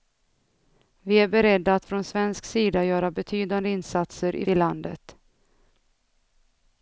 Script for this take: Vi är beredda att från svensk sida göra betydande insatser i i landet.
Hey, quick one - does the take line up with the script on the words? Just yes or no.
yes